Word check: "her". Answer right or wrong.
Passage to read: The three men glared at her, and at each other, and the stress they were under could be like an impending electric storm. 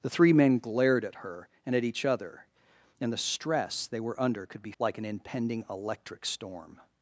right